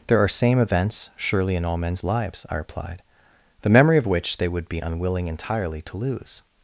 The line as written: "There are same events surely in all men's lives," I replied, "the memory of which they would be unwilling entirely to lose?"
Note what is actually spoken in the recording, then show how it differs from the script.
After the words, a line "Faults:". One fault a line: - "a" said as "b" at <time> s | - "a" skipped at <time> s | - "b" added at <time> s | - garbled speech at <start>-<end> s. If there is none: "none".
"There are same events surely in all men's lives," I replied, "the memory of which they would be unwilling entirely to lose?"
Faults:
none